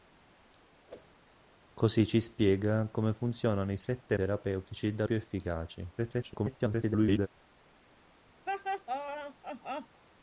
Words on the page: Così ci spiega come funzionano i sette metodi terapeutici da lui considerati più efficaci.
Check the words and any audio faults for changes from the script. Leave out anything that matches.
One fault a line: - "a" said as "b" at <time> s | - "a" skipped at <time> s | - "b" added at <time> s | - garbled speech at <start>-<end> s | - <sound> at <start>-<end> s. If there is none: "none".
- whoosh at 0.9-1.1 s
- "metodi" skipped at 4.2 s
- "lui considerati" skipped at 5.0 s
- garbled speech at 6.0-7.3 s
- laugh at 8.5-10.0 s